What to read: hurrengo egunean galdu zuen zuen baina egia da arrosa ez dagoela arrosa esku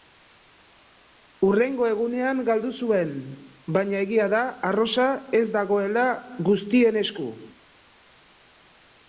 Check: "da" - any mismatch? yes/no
no